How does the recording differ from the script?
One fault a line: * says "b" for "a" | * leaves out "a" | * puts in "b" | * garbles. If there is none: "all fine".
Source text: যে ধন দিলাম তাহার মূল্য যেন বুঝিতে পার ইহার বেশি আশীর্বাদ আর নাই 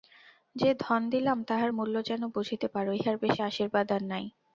all fine